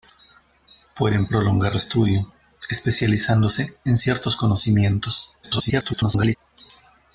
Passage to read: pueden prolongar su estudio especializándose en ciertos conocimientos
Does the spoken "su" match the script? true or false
false